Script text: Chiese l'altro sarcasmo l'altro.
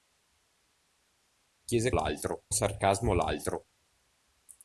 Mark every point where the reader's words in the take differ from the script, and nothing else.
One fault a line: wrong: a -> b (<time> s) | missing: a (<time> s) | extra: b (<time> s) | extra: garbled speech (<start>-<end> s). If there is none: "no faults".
no faults